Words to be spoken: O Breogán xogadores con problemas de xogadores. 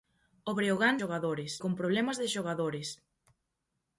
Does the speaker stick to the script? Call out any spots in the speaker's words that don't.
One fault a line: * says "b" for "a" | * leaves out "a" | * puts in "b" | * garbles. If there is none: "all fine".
all fine